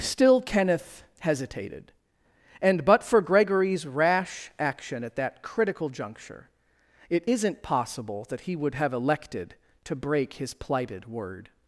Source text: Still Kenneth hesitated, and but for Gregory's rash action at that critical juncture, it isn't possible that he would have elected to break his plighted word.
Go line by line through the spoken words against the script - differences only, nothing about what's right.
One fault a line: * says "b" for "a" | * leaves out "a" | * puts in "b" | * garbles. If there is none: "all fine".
all fine